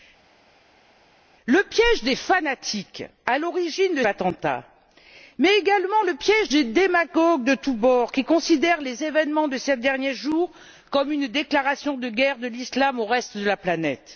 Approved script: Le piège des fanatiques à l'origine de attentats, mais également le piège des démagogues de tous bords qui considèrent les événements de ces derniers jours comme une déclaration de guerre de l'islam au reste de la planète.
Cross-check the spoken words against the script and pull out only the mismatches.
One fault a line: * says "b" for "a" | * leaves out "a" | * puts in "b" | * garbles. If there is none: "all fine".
all fine